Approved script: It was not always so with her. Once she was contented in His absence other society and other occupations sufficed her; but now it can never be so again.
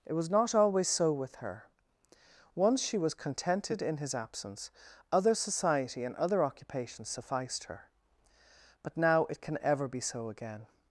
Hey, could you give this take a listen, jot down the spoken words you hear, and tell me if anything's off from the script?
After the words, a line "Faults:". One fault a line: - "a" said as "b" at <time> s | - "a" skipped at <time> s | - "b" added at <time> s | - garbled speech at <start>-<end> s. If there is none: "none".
It was not always so with her. Once she was contented in His absence other society and other occupations sufficed her; but now it can ever be so again.
Faults:
- "never" said as "ever" at 9.6 s